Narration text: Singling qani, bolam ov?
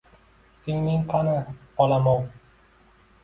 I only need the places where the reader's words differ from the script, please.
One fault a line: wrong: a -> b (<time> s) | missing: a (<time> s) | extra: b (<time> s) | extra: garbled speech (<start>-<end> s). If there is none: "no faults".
no faults